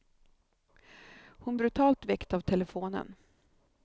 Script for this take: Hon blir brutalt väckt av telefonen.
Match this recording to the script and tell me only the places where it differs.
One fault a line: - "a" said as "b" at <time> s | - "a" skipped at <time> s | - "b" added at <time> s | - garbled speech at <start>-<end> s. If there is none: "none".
- "blir" skipped at 1.6 s